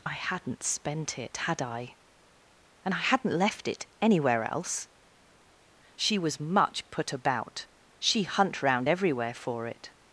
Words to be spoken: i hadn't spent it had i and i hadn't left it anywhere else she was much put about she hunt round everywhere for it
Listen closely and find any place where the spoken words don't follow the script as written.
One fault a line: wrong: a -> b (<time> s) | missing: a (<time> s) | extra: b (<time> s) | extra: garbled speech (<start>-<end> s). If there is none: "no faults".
no faults